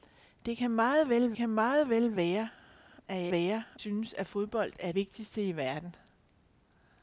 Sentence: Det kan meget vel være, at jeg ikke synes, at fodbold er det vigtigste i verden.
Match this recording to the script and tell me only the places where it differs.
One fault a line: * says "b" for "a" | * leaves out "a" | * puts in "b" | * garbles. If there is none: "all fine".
* puts in "kan meget vel"
* says "være" for "ikke"
* leaves out "det"